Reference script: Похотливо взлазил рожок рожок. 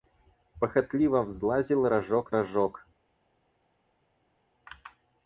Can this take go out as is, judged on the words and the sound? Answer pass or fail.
pass